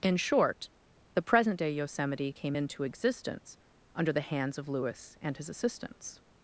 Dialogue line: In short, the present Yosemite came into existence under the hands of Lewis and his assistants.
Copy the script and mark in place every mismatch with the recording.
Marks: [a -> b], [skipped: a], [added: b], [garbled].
In short, the present [added: day] Yosemite came into existence under the hands of Lewis and his assistants.